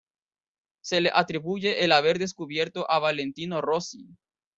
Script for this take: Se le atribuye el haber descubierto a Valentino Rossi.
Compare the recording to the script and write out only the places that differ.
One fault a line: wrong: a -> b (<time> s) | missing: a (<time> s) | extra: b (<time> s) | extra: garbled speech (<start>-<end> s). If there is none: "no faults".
no faults